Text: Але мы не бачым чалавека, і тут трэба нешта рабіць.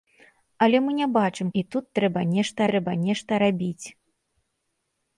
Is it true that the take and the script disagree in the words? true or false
true